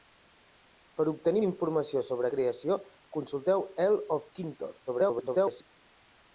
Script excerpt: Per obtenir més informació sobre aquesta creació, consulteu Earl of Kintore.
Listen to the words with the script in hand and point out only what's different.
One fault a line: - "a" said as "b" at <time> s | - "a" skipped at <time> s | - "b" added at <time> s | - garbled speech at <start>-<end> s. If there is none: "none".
- "més" skipped at 1.4 s
- "aquesta" skipped at 2.3 s
- garbled speech at 4.9-5.7 s